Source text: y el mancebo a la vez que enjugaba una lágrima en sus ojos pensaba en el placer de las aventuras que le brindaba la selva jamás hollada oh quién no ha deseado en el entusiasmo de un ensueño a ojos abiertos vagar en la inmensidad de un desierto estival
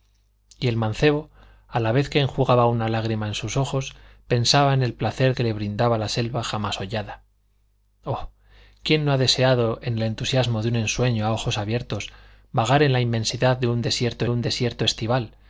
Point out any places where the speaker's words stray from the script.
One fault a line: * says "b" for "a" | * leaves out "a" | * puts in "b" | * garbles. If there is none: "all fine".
* leaves out "de las aventuras"
* puts in "un desierto"